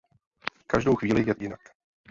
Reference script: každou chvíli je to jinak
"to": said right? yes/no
no